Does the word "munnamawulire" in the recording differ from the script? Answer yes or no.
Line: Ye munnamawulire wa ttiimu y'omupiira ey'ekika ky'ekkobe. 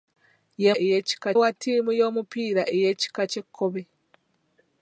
yes